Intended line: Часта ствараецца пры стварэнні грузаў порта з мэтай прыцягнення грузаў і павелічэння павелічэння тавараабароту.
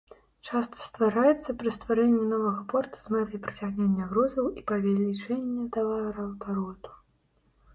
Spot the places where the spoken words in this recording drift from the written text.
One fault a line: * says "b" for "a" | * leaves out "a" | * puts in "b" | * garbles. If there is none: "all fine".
* says "новага" for "грузаў"
* leaves out "павелічэння"